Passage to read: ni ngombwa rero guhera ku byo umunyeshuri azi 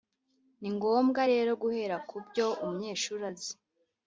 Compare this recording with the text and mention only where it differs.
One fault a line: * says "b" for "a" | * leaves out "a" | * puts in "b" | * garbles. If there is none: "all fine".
all fine